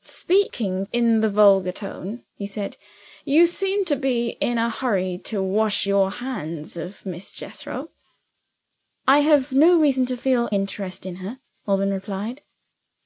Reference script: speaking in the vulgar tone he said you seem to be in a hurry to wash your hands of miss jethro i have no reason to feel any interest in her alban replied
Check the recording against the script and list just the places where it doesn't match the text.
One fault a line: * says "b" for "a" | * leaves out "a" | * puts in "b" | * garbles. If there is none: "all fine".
* leaves out "any"